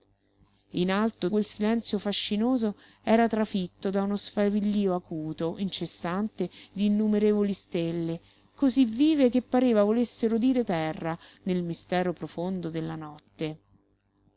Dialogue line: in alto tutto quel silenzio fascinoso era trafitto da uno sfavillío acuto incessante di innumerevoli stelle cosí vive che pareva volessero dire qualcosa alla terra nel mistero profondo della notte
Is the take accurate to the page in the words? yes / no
no